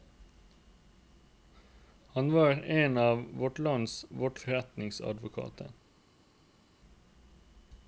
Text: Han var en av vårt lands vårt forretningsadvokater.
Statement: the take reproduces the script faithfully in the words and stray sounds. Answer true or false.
true